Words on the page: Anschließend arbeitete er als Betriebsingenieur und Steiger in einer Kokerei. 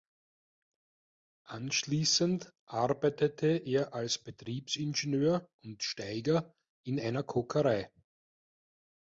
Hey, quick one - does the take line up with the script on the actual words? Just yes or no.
yes